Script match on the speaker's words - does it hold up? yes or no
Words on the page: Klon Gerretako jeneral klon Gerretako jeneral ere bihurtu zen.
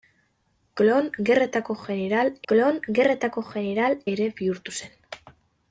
yes